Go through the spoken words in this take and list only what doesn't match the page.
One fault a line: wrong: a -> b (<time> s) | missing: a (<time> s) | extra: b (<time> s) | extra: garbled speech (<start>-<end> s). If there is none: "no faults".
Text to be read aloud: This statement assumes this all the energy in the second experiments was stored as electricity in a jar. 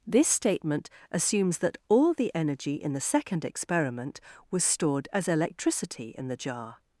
wrong: this -> that (1.6 s)
wrong: experiments -> experiment (3.5 s)
wrong: a -> the (6.3 s)